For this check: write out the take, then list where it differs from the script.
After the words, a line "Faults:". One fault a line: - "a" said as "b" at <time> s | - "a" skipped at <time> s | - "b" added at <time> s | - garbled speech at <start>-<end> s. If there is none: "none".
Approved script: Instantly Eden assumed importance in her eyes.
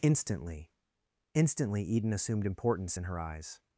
Instantly instantly Eden assumed importance in her eyes.
Faults:
- "instantly" added at 1.3 s